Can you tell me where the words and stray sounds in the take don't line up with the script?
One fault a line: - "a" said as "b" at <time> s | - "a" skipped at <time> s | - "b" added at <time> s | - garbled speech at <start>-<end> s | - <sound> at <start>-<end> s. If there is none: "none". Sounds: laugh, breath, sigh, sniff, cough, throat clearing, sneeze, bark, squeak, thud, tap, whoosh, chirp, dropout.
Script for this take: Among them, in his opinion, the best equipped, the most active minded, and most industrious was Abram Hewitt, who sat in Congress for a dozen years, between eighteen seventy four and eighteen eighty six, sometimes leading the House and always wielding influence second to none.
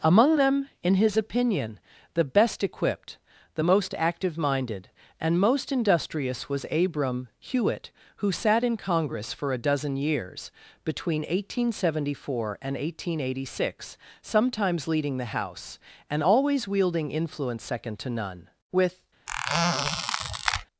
- "With" added at 18.7 s
- squeak at 19.3-20.7 s